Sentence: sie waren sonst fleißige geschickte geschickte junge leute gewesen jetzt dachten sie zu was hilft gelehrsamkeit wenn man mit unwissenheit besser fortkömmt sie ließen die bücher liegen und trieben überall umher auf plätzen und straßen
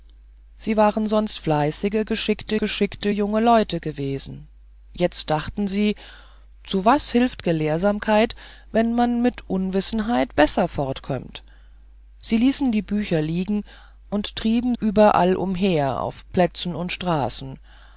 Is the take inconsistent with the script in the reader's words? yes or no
no